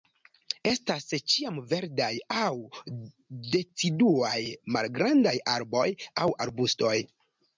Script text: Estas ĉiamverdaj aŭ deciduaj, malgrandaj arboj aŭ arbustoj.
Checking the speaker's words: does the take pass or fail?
pass